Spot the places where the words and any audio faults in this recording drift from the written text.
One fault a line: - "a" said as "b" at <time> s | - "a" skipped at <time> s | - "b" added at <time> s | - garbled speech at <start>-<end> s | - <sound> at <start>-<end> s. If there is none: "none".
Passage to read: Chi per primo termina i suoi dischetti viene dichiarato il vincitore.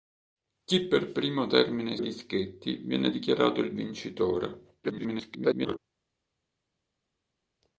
- "suoi" skipped at 2.0 s
- garbled speech at 4.8-5.8 s